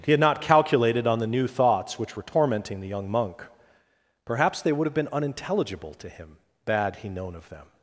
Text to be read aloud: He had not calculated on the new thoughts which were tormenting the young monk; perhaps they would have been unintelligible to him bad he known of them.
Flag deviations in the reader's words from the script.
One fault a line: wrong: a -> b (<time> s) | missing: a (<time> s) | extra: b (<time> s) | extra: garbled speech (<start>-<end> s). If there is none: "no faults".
no faults